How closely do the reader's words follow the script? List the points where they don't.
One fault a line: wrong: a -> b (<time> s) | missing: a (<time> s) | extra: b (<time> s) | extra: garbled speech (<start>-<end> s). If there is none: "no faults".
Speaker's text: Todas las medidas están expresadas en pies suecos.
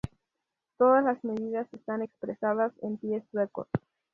no faults